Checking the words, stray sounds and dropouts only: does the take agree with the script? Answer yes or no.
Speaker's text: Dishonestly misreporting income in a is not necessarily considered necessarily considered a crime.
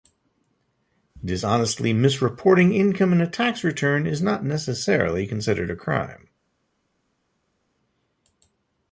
no